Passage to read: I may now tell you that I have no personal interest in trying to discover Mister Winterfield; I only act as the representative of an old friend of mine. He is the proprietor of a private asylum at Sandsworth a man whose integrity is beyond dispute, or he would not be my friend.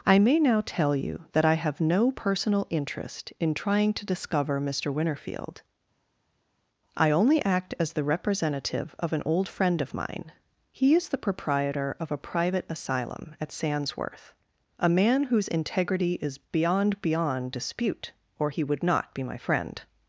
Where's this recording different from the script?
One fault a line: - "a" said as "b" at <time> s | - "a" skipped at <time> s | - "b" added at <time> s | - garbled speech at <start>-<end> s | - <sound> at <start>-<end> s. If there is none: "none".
- "beyond" added at 17.0 s